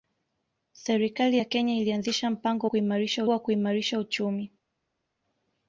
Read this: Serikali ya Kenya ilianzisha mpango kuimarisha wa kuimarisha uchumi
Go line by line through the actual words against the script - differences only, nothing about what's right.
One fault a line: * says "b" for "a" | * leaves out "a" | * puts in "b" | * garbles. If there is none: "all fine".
all fine